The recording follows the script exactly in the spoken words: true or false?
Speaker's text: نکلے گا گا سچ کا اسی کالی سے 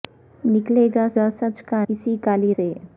true